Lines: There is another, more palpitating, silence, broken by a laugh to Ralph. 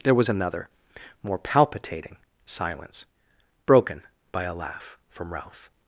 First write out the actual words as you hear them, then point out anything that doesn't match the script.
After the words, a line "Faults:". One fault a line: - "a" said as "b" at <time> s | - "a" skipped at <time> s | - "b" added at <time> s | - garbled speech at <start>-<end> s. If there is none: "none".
There was another, more palpitating, silence, broken by a laugh from Ralph.
Faults:
- "is" said as "was" at 0.1 s
- "to" said as "from" at 5.1 s